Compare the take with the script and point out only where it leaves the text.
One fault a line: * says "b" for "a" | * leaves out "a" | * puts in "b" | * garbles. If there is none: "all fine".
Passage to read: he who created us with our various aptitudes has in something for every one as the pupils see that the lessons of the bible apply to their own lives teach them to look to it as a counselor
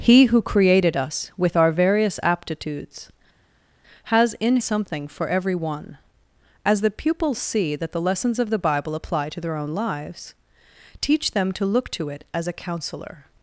all fine